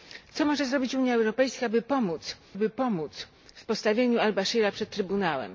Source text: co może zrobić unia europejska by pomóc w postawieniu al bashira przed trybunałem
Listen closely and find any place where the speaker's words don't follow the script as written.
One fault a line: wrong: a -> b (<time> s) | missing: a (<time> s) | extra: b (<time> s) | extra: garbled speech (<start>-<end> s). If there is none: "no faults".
extra: by pomóc (2.6 s)